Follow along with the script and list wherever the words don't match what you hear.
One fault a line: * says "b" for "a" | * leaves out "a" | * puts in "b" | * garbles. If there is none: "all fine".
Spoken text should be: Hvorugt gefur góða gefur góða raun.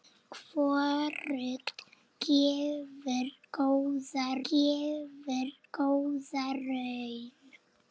all fine